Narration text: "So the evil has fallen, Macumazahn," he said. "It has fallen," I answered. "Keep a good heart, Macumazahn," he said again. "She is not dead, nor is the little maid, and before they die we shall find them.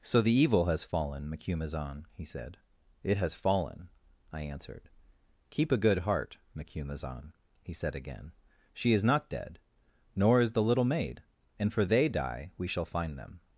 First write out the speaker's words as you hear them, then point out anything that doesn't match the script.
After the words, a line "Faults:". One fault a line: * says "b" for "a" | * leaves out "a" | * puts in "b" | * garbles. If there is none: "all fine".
"So the evil has fallen, Macumazahn," he said. "It has fallen," I answered. "Keep a good heart, Macumazahn," he said again. "She is not dead, nor is the little maid, and for they die we shall find them.
Faults:
* says "for" for "before"